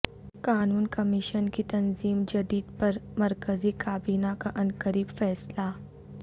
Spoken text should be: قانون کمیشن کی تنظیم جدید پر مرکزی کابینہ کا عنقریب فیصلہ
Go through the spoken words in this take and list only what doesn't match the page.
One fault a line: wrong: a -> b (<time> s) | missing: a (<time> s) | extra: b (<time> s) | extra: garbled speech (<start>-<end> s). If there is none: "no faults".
no faults